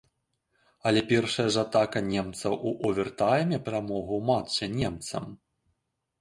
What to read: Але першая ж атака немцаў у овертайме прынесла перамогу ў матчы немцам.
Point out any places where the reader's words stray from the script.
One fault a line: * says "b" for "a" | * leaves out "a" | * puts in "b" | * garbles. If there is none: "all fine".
* leaves out "прынесла"